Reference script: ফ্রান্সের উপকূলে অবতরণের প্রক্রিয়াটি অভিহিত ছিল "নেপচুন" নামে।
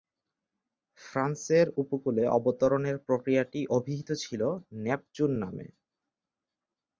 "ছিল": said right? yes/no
yes